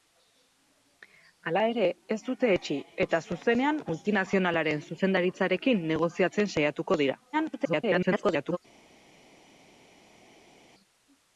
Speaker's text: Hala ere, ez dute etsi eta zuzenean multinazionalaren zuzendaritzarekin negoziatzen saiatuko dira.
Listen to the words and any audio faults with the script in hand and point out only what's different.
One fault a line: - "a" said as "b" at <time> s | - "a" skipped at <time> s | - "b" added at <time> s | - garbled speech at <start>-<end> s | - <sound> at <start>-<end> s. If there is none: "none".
- garbled speech at 7.3-8.6 s